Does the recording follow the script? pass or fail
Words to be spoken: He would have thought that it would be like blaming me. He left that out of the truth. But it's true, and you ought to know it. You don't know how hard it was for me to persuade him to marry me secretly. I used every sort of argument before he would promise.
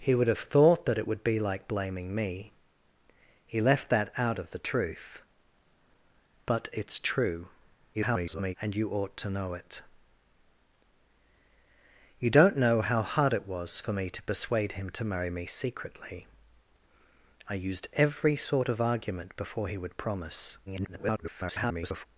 fail